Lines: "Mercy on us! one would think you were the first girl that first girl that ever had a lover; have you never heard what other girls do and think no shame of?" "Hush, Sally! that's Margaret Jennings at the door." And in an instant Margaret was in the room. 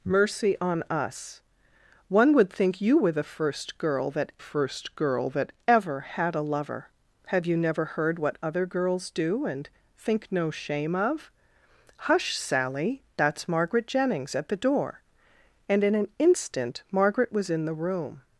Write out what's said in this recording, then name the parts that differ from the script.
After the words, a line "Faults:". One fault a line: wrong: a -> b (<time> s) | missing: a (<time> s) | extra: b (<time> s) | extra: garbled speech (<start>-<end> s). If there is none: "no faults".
"Mercy on us! one would think you were the first girl that first girl that ever had a lover; have you never heard what other girls do and think no shame of?" "Hush, Sally! that's Margaret Jennings at the door." And in an instant Margaret was in the room.
Faults:
no faults